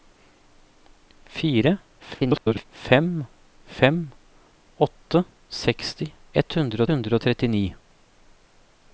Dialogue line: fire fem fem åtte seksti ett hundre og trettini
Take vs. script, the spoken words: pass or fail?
fail